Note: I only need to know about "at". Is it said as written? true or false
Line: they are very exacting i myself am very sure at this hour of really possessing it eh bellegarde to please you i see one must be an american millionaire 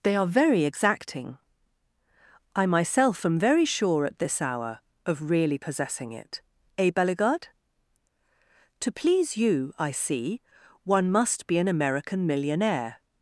true